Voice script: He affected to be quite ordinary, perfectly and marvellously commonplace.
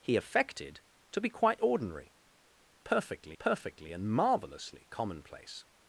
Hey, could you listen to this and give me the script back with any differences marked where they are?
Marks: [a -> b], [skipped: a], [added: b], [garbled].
He affected to be quite ordinary, perfectly [added: perfectly] and marvellously commonplace.